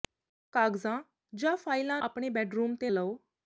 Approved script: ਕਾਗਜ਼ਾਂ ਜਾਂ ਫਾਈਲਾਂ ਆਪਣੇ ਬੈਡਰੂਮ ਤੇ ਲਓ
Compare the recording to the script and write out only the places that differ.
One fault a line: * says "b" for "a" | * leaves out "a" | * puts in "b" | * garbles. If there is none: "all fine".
all fine